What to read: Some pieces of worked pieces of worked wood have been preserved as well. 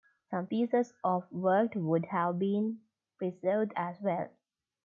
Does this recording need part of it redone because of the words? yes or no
yes